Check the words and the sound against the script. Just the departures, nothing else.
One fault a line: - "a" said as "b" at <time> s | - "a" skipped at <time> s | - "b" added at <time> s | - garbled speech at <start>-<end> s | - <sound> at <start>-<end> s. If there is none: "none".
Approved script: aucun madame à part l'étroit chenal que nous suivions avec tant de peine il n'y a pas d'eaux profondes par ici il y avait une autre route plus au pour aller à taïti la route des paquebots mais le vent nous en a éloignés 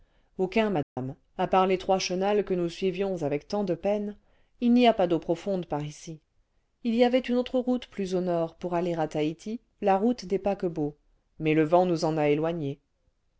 - dropout at 0.8-1.0 s
- "nord" added at 8.2 s